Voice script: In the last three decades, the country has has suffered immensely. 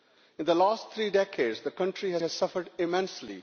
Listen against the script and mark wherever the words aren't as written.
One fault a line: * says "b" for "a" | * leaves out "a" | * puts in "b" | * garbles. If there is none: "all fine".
all fine